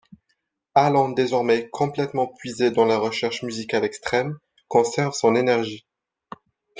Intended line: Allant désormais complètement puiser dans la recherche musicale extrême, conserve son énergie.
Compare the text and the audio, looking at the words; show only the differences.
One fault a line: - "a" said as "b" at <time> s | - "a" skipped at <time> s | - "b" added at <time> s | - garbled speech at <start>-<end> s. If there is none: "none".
none